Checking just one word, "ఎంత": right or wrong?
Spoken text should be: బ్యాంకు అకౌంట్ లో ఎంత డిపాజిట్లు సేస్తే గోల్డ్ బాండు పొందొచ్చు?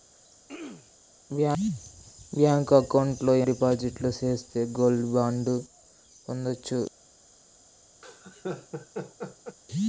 wrong